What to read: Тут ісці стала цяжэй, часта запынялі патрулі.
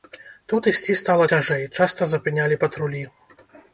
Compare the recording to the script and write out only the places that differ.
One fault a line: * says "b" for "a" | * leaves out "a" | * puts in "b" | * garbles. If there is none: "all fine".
all fine